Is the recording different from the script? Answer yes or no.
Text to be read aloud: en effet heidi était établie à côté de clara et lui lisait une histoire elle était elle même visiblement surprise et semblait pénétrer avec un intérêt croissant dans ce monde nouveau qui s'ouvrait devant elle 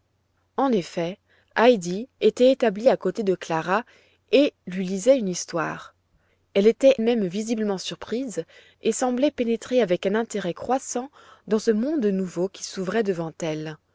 yes